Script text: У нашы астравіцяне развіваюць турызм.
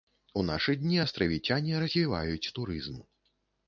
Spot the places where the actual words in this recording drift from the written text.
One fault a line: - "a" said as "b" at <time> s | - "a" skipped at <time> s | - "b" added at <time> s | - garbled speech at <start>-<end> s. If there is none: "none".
- "дні" added at 0.8 s